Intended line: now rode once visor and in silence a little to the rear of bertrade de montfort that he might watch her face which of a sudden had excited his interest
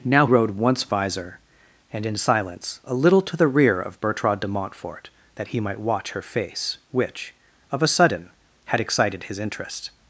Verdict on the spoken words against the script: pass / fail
pass